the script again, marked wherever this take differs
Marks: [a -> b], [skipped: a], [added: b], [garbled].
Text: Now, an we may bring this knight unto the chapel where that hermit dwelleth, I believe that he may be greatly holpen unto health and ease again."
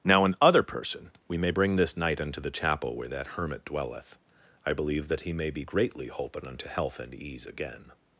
Now, an [added: other person] we may bring this knight unto the chapel where that hermit dwelleth, I believe that he may be greatly holpen unto health and ease again."